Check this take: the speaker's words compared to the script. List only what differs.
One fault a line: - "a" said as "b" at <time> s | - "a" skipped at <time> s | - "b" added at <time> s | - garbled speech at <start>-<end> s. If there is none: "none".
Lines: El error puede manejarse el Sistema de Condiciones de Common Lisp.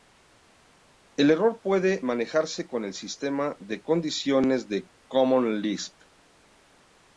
- "con" added at 2.7 s